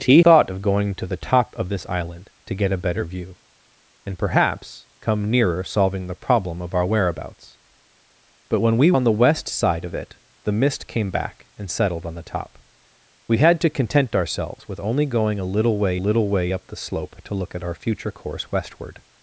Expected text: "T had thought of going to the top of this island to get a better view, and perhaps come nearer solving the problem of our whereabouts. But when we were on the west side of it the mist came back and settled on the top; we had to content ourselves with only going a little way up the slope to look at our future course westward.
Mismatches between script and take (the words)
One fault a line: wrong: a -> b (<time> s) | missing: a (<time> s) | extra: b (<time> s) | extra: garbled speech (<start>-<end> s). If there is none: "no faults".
missing: had (0.2 s)
missing: were (8.9 s)
extra: little way (15.9 s)